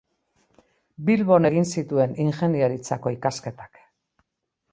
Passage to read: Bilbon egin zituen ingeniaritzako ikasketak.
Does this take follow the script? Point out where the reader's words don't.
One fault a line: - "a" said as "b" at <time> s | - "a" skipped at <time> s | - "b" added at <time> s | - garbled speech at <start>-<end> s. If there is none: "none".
none